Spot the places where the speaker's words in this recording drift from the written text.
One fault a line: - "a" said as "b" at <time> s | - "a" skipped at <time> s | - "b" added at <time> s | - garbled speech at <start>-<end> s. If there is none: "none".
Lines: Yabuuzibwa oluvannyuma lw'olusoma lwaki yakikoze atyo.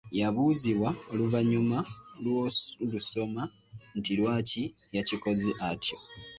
- "nti" added at 4.0 s